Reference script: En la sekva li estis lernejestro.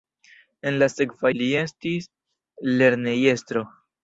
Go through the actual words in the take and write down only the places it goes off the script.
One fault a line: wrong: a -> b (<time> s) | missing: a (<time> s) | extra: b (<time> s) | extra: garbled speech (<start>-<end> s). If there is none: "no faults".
no faults